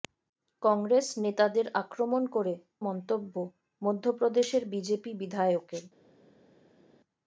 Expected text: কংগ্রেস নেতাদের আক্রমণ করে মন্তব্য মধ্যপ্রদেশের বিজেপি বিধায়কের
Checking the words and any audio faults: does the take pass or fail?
pass